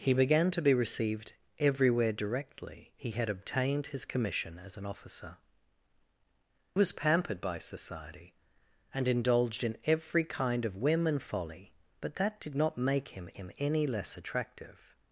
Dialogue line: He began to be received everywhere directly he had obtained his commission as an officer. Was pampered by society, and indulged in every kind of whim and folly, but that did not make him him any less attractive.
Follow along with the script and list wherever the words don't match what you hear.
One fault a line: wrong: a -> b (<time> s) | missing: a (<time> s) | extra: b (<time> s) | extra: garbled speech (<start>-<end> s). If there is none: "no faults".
no faults